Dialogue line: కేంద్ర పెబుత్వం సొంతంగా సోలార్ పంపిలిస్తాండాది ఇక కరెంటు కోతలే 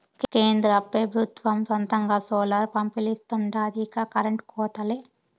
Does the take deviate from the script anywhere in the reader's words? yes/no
no